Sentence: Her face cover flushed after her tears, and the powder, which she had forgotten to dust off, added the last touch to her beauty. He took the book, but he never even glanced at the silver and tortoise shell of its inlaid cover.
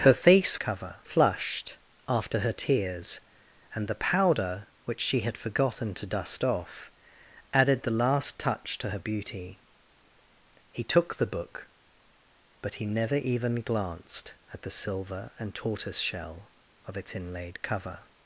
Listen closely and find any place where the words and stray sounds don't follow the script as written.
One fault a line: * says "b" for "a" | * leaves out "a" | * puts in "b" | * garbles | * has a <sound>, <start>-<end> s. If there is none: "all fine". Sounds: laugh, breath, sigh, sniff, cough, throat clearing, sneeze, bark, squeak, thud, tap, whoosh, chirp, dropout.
all fine